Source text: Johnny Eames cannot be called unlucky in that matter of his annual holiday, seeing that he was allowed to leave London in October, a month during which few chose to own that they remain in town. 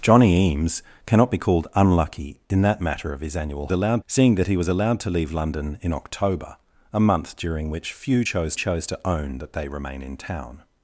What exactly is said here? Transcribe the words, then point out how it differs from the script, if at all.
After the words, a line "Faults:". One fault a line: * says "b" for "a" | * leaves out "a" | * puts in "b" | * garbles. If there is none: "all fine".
Johnny Eames cannot be called unlucky in that matter of his annual allowed, seeing that he was allowed to leave London in October, a month during which few chose chose to own that they remain in town.
Faults:
* says "allowed" for "holiday"
* puts in "chose"